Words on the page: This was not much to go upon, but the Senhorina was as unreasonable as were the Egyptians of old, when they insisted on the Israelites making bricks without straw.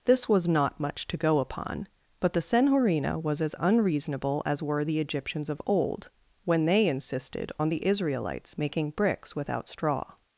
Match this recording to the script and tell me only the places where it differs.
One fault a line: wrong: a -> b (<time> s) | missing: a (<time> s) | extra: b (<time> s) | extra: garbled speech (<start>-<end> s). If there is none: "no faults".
no faults